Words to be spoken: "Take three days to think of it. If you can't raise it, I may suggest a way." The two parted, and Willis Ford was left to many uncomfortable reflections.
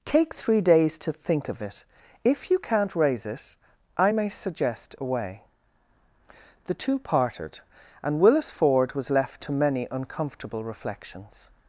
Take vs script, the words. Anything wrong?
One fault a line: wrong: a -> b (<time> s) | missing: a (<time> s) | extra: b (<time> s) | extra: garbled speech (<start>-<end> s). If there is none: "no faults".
no faults